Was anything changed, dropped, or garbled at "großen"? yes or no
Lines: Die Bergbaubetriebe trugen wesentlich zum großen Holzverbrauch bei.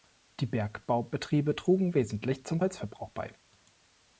yes